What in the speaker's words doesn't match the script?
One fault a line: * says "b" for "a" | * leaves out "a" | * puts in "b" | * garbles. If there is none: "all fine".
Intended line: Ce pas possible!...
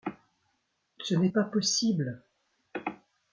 * puts in "n'est"